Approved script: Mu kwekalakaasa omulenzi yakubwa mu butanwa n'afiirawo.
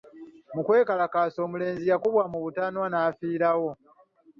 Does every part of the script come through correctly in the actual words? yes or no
yes